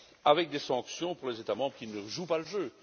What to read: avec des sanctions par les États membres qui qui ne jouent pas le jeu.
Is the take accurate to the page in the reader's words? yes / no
no